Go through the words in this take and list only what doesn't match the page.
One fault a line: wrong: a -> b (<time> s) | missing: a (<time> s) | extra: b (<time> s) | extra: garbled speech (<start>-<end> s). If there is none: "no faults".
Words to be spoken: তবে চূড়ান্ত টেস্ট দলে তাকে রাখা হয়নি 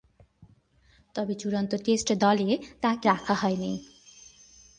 no faults